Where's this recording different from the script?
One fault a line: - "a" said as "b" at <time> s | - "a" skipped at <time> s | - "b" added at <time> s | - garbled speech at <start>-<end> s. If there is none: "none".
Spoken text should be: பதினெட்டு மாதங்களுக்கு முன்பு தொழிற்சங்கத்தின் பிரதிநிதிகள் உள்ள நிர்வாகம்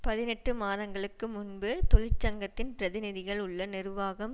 none